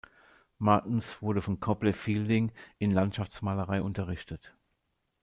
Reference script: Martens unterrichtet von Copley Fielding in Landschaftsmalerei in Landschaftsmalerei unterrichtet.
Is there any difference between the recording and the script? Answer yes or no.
yes